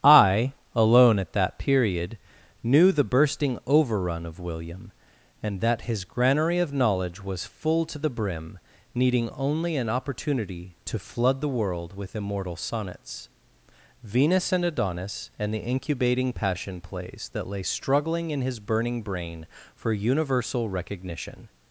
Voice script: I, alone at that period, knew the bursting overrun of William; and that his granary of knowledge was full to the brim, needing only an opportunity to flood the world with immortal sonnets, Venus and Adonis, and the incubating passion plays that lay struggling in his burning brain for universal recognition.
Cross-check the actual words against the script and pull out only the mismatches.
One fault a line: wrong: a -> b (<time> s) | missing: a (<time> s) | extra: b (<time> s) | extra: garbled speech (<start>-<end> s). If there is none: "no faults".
no faults